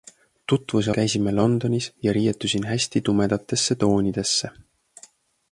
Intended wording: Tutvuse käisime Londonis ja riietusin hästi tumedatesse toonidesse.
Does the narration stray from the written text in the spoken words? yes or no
no